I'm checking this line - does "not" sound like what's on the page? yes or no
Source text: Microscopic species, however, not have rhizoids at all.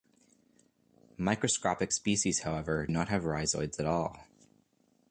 yes